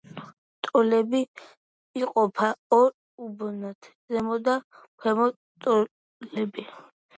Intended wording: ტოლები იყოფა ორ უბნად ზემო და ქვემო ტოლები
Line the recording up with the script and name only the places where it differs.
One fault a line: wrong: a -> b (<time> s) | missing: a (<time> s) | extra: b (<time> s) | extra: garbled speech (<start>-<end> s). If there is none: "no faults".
no faults